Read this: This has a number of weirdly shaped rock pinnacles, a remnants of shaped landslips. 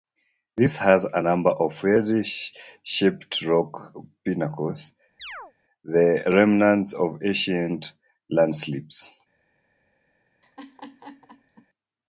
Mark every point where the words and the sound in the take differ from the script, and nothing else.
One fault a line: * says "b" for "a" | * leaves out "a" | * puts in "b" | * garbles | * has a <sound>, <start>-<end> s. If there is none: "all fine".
* has a chirp, 5.2-5.5 s
* says "the" for "a"
* says "ancient" for "shaped"
* has a laugh, 10.4-11.7 s